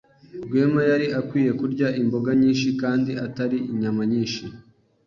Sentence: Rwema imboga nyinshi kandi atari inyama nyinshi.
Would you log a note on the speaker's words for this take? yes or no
yes